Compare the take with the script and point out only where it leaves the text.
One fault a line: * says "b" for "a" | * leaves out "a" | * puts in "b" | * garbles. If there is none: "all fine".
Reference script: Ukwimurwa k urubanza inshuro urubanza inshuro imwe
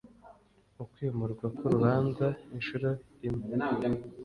* leaves out "urubanza inshuro"